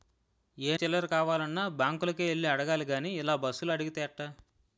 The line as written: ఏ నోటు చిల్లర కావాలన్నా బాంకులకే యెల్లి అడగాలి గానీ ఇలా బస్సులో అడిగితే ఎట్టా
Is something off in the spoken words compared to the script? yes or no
yes